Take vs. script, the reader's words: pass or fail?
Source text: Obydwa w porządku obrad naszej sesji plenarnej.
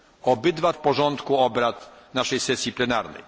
pass